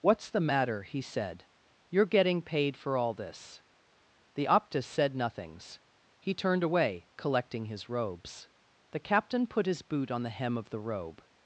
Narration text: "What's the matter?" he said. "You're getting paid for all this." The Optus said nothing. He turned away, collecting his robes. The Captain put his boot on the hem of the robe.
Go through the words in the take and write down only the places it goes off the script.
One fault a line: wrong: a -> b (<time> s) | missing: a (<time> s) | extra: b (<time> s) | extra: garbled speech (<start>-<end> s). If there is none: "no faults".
wrong: nothing -> nothings (5.2 s)